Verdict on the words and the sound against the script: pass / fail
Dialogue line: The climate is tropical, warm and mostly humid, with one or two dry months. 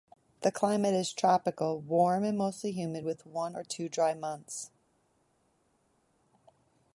pass